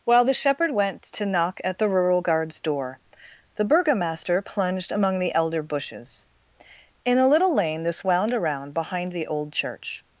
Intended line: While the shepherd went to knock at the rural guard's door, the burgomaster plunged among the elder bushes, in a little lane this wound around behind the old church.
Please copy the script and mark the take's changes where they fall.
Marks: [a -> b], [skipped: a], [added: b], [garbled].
While the shepherd went to knock at the rural guard's door, the burgomaster plunged among the elder bushes, in a little lane this wound around behind the old church.